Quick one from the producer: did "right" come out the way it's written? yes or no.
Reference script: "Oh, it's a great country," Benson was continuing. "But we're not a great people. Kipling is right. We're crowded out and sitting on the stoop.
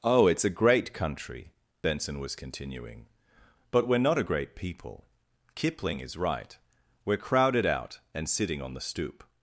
yes